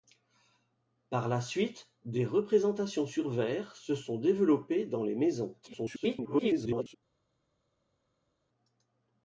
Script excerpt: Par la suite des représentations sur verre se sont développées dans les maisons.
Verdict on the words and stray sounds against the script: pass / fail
fail